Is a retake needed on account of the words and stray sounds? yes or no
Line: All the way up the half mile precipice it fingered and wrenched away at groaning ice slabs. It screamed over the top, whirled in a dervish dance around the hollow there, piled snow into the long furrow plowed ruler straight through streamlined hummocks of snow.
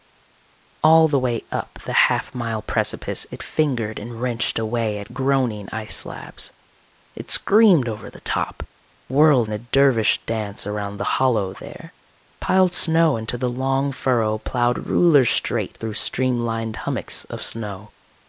no